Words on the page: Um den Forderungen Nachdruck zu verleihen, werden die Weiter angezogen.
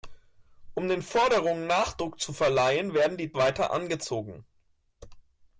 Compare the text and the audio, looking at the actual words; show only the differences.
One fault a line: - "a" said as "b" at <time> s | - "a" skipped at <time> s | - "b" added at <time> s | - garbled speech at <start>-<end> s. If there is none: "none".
none